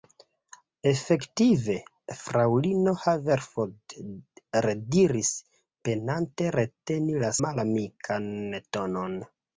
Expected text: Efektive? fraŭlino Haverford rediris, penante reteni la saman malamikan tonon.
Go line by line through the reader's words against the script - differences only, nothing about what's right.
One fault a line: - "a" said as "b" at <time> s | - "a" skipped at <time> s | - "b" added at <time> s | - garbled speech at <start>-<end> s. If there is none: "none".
- "saman" skipped at 7.3 s